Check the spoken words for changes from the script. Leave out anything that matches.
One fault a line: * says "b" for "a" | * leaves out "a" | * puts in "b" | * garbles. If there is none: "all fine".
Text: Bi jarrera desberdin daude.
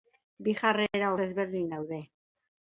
all fine